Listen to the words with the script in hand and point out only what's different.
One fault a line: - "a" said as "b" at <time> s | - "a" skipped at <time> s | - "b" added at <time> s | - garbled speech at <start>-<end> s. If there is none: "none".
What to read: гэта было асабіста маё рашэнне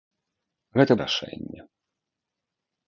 - "было асабіста маё" skipped at 0.9 s